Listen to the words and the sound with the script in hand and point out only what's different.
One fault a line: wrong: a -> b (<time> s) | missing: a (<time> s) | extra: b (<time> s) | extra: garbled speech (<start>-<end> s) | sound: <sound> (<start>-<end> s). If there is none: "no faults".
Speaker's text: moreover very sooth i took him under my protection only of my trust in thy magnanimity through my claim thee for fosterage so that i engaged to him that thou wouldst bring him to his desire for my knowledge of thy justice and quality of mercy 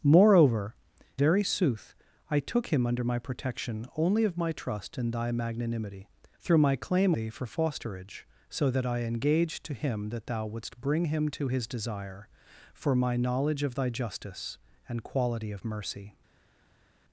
no faults